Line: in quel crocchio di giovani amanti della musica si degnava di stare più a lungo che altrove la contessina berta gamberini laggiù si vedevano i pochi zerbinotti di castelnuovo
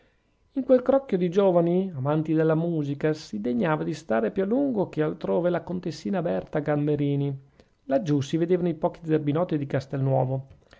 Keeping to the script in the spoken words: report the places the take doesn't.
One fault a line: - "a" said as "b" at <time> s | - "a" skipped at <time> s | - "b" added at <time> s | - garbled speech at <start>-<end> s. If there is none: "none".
none